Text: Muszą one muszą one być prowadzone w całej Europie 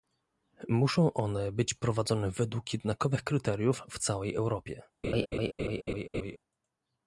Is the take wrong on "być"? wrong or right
wrong